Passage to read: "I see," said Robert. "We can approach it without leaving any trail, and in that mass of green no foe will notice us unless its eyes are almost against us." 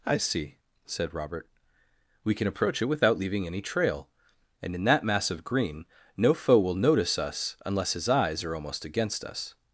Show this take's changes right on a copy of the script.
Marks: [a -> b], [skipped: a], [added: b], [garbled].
"I see," said Robert. "We can approach it without leaving any trail, and in that mass of green no foe will notice us unless [its -> his] eyes are almost against us."